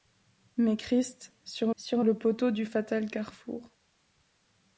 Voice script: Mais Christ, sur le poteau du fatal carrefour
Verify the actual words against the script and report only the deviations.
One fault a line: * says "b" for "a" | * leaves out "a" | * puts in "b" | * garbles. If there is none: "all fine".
* puts in "sur"